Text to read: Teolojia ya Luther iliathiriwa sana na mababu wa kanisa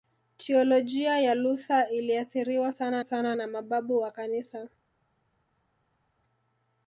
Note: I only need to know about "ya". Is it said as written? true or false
true